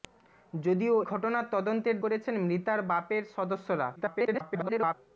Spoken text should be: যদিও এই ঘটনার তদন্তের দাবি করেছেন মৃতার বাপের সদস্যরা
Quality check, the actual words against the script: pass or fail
fail